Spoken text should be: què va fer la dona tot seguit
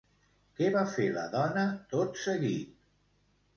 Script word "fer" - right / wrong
right